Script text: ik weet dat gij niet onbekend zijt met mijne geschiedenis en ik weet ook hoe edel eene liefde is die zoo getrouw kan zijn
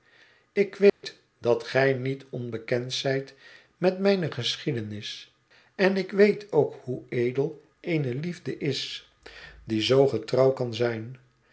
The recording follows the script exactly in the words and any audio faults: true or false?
false